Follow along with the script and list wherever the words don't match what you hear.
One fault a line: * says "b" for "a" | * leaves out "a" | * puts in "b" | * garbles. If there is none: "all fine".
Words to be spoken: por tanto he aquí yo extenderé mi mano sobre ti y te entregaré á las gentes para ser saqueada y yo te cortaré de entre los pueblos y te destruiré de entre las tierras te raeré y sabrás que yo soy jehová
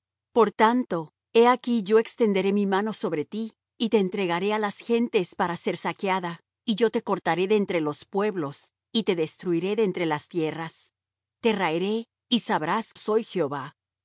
* leaves out "que yo"